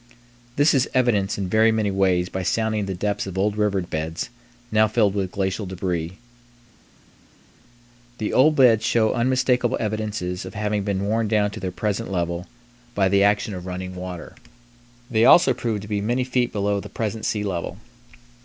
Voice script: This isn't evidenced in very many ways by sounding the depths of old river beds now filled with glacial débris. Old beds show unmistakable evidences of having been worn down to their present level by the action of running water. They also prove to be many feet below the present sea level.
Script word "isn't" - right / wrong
wrong